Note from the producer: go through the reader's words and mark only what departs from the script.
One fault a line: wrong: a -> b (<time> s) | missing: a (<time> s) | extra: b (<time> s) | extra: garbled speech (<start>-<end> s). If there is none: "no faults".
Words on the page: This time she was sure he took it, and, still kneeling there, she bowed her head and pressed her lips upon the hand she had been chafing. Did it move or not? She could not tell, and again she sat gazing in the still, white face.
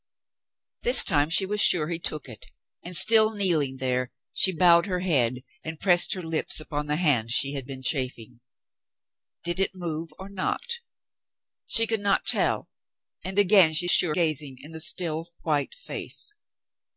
wrong: sat -> sure (13.9 s)